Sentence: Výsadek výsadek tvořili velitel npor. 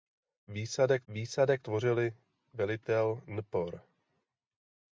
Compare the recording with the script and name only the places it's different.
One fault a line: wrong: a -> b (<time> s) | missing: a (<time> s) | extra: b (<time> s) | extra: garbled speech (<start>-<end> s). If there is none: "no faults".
no faults